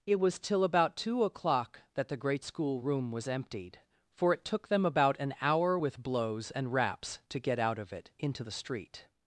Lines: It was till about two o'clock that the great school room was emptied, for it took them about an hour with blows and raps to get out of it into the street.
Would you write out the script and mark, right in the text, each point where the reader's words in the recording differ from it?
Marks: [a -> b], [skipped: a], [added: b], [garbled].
It was till about two o'clock that the great school room was emptied, for it took them about an hour with blows and raps to get out of it into the street.